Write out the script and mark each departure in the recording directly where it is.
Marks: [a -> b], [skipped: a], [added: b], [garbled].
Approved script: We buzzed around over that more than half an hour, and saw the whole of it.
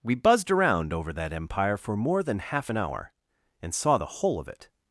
We buzzed around over that [added: empire for] more than half an hour, and saw the whole of it.